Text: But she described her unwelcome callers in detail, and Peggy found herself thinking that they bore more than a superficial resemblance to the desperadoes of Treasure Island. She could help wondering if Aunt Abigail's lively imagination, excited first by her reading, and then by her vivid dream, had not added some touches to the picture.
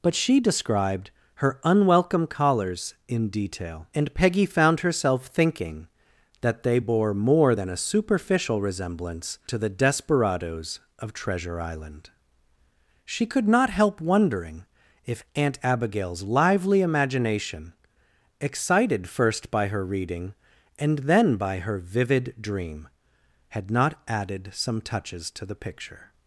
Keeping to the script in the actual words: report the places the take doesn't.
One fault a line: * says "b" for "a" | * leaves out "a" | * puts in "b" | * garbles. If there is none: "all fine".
* puts in "not"